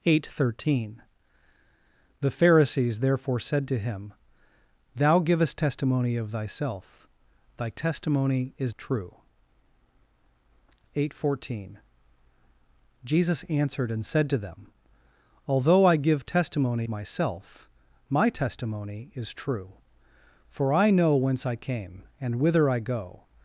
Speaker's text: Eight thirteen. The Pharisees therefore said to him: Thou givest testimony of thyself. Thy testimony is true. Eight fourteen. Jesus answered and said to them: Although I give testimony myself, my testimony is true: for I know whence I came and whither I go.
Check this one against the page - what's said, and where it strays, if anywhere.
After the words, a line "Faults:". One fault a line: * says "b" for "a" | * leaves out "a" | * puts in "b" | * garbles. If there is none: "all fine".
Eight thirteen. The Pharisees therefore said to him: Thou givest testimony of thyself. Thy testimony is true. Eight fourteen. Jesus answered and said to them: Although I give testimony myself, my testimony is true: for I know whence I came and whither I go.
Faults:
all fine